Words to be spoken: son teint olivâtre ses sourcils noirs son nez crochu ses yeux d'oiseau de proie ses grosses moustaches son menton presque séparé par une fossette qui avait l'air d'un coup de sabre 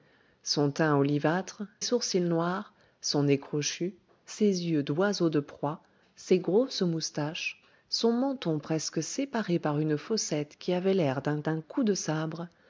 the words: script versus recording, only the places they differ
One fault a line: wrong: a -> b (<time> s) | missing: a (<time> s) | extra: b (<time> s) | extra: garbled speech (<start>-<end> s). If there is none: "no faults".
missing: ses (1.6 s)
extra: d'un (11.4 s)